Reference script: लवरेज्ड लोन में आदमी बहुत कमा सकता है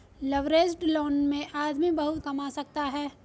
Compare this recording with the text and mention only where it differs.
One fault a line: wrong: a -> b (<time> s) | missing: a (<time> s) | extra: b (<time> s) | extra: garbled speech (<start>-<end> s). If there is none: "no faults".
no faults